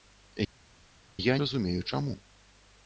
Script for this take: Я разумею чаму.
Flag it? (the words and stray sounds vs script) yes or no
no